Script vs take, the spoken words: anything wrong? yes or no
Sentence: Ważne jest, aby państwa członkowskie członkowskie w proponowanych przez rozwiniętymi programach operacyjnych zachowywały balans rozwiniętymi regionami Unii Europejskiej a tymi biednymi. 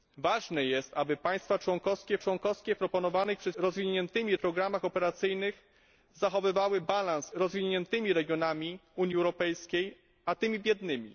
no